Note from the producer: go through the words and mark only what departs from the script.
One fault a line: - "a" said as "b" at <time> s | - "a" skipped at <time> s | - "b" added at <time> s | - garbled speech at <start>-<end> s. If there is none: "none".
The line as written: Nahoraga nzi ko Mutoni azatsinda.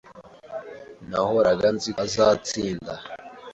- "ko Mutoni" skipped at 1.9 s